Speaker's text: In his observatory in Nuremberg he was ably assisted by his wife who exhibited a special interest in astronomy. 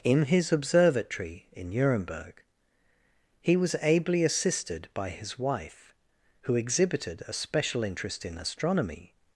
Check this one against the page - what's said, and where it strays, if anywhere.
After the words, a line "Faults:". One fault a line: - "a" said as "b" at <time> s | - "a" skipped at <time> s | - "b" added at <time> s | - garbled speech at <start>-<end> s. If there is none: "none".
In his observatory in Nuremberg he was ably assisted by his wife who exhibited a special interest in astronomy.
Faults:
none